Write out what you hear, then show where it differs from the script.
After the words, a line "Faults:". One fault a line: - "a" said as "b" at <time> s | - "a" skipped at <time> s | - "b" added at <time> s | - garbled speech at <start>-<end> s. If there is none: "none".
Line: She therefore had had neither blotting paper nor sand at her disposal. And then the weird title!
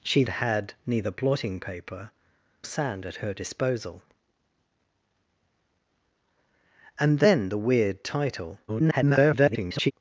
She had neither blotting paper sand at her disposal. And then the weird title! [garbled]
Faults:
- "therefore" skipped at 0.2 s
- "had" skipped at 0.7 s
- "nor" skipped at 2.1 s
- garbled speech at 8.7-9.9 s